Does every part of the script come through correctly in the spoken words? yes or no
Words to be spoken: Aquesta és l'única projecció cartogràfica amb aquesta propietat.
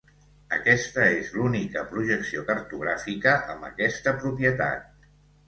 yes